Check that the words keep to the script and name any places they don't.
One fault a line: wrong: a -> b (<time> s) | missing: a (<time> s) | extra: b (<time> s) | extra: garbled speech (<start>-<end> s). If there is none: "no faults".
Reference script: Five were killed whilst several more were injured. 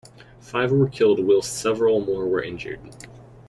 no faults